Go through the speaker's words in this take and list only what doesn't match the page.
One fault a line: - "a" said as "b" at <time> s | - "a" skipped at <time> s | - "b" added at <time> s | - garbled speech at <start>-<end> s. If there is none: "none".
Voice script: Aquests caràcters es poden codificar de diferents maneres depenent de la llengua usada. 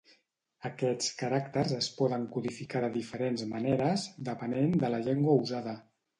none